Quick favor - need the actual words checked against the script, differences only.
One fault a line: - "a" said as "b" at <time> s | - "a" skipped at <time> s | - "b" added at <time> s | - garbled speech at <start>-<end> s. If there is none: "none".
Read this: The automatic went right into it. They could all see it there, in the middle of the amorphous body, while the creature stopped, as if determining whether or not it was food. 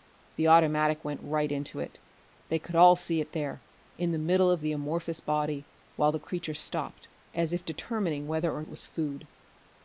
- "not" skipped at 8.6 s